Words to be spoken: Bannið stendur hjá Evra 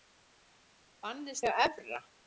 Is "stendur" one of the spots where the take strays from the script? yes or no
yes